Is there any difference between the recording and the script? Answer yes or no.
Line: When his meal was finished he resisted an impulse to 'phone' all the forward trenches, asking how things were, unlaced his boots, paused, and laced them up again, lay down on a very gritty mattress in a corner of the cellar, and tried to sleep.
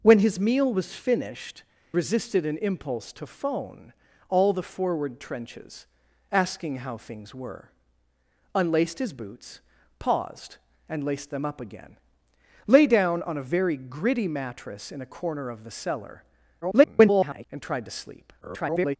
yes